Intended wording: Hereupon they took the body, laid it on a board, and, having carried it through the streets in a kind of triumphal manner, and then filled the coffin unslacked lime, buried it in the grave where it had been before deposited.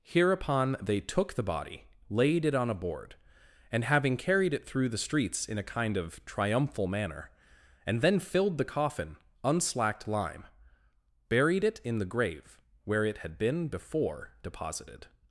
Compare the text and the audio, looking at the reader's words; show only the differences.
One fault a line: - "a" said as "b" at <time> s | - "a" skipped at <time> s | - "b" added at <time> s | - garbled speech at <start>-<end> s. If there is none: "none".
none